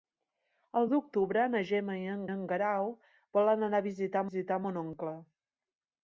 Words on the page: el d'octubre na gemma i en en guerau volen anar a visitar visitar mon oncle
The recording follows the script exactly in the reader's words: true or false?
true